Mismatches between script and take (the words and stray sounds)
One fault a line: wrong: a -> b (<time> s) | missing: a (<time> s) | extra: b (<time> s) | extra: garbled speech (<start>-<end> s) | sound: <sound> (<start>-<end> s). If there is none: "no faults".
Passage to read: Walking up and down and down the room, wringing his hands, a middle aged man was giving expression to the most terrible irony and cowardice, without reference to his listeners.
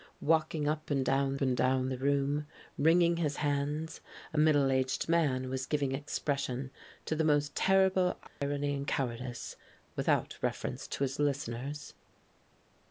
sound: dropout (8.3-8.4 s)